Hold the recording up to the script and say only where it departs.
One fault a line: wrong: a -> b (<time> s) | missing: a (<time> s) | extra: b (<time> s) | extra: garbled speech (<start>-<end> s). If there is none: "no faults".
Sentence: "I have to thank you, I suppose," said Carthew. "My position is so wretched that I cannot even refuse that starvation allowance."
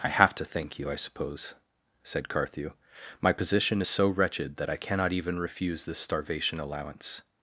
wrong: that -> this (5.8 s)